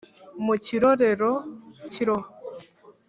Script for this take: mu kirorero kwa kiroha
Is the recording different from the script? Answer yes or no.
yes